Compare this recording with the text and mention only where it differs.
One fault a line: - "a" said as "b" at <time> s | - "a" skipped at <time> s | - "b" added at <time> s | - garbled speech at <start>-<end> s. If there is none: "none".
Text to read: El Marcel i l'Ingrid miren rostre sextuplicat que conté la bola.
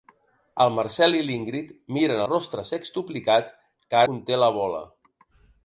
none